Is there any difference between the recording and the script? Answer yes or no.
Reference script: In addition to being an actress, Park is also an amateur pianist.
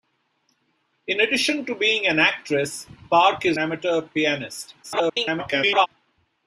yes